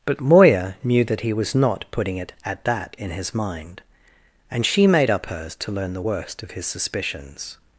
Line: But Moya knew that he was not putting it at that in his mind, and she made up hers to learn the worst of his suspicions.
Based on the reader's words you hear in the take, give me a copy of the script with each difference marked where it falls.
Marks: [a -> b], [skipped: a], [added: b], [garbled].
But Moya knew that he was not putting it at that in his mind, and she made up hers to learn the worst of his suspicions.